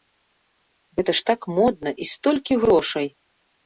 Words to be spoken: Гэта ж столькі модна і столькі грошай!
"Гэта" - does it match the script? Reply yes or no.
yes